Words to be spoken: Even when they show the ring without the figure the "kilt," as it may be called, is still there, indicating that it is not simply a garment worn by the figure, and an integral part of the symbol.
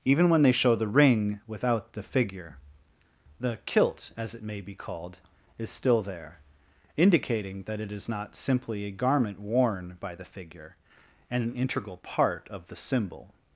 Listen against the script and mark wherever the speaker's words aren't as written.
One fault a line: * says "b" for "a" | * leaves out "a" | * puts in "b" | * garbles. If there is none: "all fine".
all fine